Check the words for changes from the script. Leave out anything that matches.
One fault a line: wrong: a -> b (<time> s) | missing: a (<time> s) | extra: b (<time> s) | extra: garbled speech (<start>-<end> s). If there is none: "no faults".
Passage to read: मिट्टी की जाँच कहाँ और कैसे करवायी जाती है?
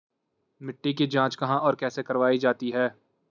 no faults